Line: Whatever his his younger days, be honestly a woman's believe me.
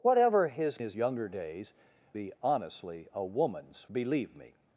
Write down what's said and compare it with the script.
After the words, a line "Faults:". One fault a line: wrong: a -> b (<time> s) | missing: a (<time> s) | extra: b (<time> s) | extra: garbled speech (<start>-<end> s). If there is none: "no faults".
Whatever his his younger days, be honestly a woman's believe me.
Faults:
no faults